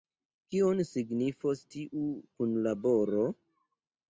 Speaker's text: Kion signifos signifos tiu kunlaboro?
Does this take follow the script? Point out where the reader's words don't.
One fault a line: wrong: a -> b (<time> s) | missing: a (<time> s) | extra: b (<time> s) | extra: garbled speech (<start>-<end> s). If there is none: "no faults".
missing: signifos (1.6 s)